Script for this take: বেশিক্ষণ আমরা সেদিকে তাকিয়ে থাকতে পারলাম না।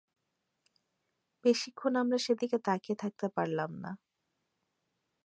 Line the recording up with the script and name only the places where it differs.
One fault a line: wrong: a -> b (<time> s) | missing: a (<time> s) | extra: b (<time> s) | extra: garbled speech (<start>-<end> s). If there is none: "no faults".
no faults